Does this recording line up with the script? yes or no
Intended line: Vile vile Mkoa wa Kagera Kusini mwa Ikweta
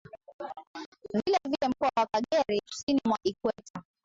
yes